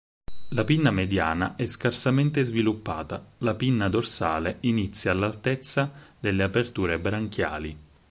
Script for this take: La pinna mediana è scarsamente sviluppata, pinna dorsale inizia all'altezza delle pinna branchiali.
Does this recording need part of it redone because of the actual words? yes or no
yes